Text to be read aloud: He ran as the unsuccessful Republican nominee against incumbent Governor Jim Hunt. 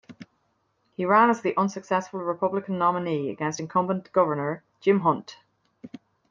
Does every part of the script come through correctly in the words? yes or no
yes